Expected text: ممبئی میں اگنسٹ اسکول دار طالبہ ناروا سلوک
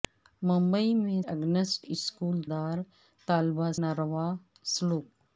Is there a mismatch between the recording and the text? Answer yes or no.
no